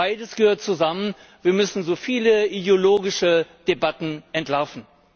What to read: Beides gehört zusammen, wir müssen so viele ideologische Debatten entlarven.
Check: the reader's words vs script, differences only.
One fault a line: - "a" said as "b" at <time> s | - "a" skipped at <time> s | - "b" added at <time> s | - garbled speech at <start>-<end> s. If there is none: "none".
none